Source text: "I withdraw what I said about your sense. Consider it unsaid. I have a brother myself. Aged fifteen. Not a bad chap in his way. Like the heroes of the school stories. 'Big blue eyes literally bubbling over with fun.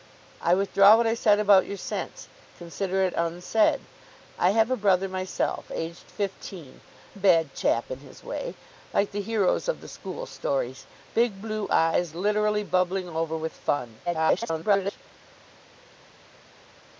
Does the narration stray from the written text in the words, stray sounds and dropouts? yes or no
yes